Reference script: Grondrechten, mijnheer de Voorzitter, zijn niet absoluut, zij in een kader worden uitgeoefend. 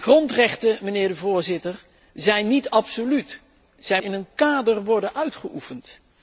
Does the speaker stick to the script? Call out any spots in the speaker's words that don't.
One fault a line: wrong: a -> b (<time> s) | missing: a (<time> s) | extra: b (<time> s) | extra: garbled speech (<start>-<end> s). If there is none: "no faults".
no faults